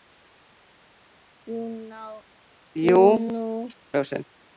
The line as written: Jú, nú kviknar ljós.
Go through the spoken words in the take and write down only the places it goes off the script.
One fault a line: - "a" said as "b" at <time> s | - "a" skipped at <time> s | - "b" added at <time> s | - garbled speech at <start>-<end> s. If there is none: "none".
- "kviknar" skipped at 3.5 s